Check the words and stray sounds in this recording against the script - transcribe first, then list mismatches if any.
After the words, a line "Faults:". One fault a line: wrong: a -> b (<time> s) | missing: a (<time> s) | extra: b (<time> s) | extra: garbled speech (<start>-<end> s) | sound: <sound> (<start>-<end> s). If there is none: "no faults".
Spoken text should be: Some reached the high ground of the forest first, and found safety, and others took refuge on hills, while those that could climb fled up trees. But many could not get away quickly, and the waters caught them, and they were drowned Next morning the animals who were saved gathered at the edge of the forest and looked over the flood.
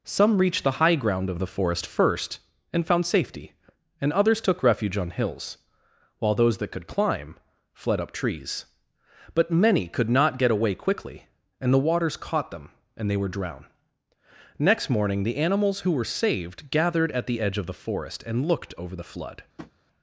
Some reached the high ground of the forest first, and found safety, and others took refuge on hills, while those that could climb fled up trees. But many could not get away quickly, and the waters caught them, and they were drowned Next morning the animals who were saved gathered at the edge of the forest and looked over the flood.
Faults:
sound: tap (19.6-19.7 s)